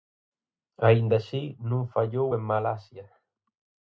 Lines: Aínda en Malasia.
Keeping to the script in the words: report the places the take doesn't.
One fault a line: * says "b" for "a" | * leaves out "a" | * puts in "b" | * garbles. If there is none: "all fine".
* puts in "así non fallou"